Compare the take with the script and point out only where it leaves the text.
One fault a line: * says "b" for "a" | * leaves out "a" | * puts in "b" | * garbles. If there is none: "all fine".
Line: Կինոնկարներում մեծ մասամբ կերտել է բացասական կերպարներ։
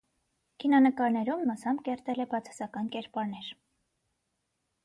* leaves out "մեծ"